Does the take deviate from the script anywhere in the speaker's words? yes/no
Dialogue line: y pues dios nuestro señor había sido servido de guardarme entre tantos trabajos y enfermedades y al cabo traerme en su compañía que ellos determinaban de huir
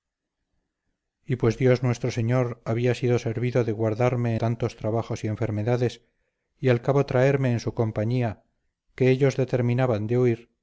yes